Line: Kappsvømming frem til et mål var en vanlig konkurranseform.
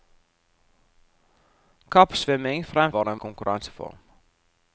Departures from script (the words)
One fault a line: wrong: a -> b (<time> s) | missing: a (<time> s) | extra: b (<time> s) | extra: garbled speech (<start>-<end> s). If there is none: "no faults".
missing: til et mål (2.9 s)
missing: vanlig (3.2 s)